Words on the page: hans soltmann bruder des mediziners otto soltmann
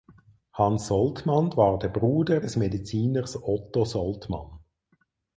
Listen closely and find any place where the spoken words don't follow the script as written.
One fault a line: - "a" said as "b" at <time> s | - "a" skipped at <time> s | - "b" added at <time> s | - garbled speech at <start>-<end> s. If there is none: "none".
- "war der" added at 1.6 s